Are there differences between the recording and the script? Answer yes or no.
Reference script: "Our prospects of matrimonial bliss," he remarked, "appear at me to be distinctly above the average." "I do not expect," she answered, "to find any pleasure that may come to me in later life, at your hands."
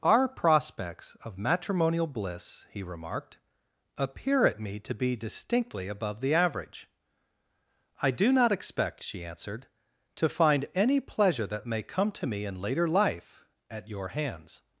no